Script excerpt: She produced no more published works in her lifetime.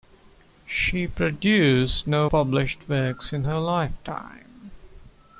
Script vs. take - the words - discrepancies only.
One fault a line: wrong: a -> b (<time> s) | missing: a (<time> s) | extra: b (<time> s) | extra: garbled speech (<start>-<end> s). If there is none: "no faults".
missing: more (2.3 s)